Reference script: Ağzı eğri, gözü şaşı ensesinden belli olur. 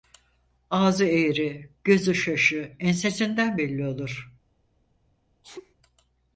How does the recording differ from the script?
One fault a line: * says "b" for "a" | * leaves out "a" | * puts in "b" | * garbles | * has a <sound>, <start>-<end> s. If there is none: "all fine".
* has a sneeze, 5.4-5.7 s